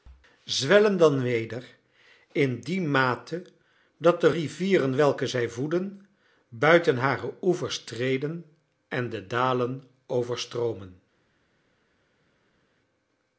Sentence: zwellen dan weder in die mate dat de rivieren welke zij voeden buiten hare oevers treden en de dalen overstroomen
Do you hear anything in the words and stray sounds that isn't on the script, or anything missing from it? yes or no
no